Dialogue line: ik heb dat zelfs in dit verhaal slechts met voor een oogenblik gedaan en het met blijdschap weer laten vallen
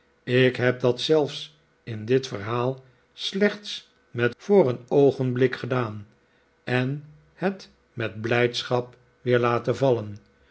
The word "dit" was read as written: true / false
true